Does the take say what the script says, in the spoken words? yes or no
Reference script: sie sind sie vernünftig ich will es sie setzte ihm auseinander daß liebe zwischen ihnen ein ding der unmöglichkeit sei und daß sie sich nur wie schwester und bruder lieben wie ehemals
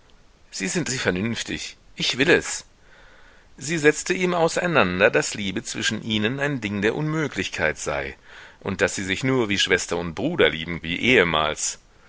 yes